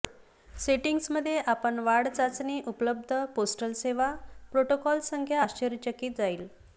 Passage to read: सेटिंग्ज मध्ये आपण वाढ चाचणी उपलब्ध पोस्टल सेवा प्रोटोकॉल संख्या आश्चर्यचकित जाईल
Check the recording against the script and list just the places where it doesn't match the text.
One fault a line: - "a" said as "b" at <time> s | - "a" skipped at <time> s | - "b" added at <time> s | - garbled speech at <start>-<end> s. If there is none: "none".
none